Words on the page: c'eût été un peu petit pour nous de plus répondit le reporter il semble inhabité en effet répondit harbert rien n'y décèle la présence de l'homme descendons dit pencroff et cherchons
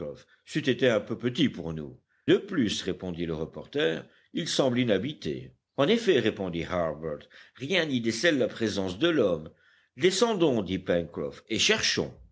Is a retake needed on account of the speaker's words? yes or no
no